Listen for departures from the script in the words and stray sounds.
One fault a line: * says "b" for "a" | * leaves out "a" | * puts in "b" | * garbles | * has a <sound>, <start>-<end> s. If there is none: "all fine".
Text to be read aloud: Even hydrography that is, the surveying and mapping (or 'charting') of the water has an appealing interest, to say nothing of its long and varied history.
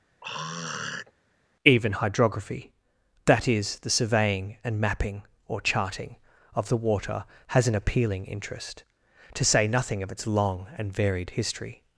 * has a throat clearing, 0.2-1.1 s